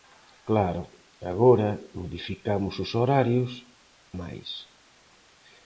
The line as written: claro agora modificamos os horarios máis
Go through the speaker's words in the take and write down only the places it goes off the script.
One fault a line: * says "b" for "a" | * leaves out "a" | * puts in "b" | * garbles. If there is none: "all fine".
all fine